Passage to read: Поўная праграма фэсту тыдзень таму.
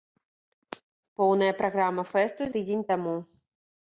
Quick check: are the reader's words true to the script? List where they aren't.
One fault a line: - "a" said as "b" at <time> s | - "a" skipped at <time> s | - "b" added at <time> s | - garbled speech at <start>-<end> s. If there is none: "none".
none